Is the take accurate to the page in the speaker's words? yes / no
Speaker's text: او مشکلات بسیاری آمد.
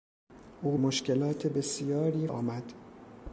yes